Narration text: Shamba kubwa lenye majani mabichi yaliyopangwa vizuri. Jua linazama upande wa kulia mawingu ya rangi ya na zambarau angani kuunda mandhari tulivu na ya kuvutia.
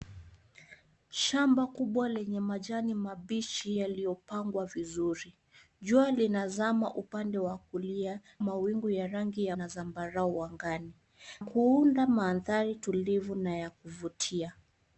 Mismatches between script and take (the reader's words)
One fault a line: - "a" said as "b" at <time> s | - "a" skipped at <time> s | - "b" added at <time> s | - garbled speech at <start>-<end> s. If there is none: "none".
none